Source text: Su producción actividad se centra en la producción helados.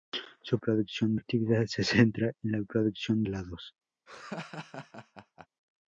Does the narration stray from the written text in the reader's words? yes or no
no